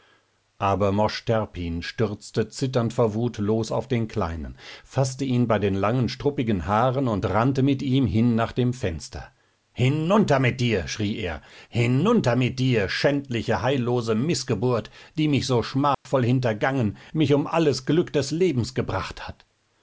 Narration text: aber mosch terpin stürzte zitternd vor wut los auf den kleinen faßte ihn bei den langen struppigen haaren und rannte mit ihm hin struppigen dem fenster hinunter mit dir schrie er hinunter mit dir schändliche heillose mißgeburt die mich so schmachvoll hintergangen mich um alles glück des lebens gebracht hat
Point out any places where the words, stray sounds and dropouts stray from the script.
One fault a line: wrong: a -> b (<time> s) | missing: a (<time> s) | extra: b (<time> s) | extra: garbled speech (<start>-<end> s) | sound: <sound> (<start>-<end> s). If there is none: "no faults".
wrong: struppigen -> nach (8.3 s)
sound: dropout (15.9-16.1 s)